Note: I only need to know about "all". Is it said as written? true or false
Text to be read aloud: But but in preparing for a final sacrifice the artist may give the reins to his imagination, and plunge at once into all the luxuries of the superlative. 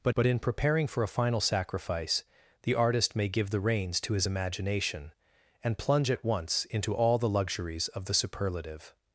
true